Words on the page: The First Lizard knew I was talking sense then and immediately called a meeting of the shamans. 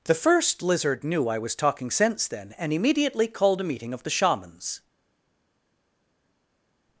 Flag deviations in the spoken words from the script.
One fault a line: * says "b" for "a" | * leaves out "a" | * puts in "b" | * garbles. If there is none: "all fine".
all fine